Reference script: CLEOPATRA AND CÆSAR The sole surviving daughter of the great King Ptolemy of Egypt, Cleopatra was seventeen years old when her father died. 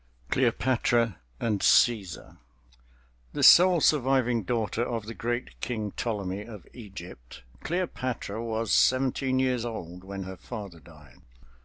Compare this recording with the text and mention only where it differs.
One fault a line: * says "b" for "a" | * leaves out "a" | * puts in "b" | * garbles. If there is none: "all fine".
all fine